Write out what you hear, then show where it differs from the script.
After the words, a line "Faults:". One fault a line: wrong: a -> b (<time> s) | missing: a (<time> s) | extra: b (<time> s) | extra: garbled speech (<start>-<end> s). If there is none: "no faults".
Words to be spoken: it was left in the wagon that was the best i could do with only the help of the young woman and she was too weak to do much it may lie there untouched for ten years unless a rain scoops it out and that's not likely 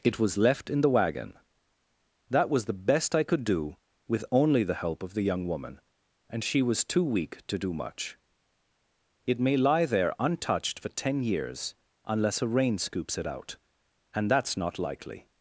it was left in the wagon that was the best i could do with only the help of the young woman and she was too weak to do much it may lie there untouched for ten years unless a rain scoops it out and that's not likely
Faults:
no faults